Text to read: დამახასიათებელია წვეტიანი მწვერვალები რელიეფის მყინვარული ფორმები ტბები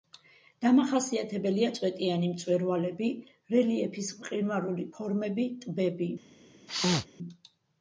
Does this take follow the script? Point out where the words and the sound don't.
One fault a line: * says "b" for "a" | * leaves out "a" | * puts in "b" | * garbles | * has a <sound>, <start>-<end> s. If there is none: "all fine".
* has a sneeze, 6.7-7.1 s